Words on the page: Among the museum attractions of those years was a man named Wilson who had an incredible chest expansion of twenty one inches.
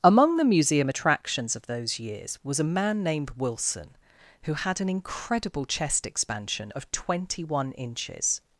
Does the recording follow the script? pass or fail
pass